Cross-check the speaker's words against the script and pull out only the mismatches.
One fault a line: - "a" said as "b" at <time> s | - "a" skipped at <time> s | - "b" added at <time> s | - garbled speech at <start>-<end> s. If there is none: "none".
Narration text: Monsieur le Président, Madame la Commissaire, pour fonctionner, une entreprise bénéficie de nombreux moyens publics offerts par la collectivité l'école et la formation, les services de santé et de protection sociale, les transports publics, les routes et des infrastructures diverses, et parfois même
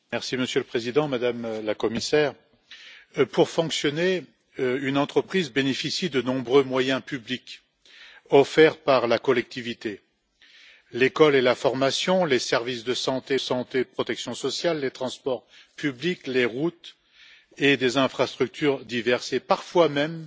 - "santé" added at 13.4 s